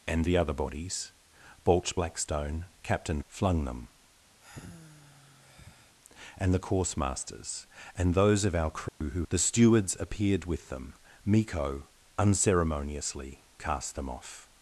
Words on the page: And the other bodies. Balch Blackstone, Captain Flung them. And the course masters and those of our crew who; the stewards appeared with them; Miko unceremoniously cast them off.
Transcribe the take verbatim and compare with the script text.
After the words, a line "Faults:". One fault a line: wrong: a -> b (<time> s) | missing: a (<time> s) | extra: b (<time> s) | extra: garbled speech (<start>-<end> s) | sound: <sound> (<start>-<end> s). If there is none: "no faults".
And the other bodies. Balch Blackstone, Captain Flung them. And the course masters and those of our crew who; the stewards appeared with them; Miko unceremoniously cast them off.
Faults:
sound: sigh (4.4-6.0 s)
sound: dropout (8.9-9.0 s)